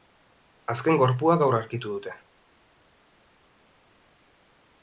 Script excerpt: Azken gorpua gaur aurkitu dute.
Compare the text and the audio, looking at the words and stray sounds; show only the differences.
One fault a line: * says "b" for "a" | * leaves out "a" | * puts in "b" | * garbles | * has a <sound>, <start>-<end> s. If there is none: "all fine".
all fine